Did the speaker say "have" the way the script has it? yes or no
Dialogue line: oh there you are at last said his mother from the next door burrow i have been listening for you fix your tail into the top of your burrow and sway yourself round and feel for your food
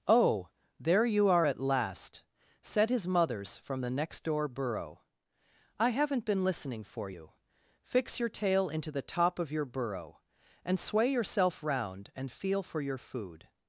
no